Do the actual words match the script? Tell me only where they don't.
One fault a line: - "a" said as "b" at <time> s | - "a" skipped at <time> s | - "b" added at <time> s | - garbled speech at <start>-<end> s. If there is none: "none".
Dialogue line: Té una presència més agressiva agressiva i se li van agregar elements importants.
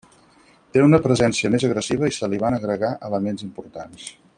- "agressiva" skipped at 2.1 s